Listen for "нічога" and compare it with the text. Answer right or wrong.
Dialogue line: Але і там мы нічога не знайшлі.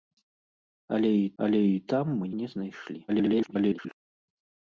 wrong